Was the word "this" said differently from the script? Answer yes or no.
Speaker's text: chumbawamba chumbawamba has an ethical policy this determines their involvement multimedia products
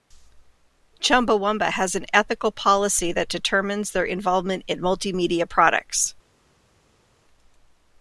yes